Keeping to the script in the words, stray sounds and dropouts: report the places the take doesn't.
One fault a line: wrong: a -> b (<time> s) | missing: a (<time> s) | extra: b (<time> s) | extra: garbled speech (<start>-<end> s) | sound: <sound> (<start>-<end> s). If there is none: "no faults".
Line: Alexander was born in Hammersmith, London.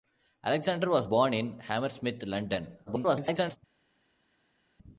extra: garbled speech (2.9-3.6 s)